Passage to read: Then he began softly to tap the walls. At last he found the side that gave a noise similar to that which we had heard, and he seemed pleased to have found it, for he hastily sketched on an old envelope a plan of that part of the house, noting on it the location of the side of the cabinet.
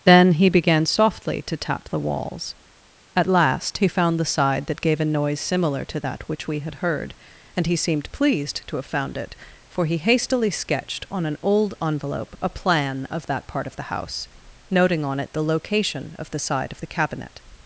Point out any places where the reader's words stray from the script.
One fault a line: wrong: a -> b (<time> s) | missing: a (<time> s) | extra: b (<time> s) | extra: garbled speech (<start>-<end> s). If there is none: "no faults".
no faults